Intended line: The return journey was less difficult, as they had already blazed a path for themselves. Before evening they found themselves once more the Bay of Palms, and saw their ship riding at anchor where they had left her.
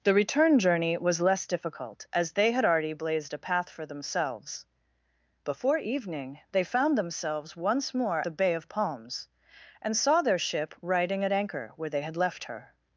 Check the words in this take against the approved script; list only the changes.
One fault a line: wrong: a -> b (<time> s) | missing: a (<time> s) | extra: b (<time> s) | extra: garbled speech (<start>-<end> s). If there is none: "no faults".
no faults